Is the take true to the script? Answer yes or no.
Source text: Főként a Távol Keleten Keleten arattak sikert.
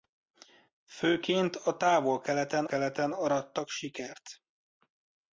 yes